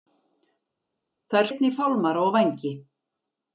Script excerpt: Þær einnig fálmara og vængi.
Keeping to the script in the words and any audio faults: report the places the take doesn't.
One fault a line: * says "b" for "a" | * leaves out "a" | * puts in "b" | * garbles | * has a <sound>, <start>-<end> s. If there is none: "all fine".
all fine